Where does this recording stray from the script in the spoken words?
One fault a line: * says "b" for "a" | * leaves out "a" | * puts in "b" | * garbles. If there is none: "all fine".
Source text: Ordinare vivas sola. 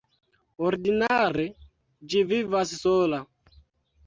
* puts in "ĝi"